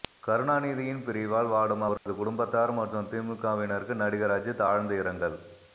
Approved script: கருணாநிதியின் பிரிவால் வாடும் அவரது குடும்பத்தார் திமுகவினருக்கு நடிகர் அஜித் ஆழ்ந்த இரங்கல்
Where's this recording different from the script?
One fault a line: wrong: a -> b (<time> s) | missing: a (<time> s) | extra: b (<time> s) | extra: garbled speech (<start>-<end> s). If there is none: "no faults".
extra: மற்றும் (2.8 s)